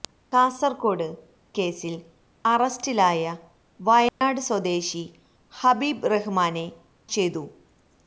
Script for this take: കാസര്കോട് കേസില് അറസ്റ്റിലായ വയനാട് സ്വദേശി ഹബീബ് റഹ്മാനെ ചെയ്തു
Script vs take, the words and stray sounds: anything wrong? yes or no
yes